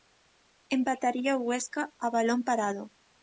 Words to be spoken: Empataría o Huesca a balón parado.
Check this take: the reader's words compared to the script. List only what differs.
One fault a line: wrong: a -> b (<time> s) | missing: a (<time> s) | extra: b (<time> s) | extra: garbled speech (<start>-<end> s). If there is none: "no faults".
no faults